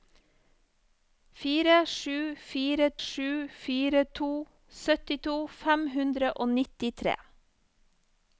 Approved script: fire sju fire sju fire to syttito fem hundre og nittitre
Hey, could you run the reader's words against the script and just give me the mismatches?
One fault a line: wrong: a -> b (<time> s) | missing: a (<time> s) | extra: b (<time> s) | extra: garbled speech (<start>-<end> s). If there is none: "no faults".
no faults